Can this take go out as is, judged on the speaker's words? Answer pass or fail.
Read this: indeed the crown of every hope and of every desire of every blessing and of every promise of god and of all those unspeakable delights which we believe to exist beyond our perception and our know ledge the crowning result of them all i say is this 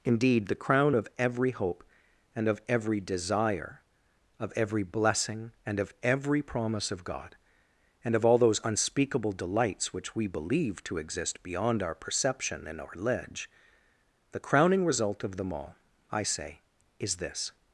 fail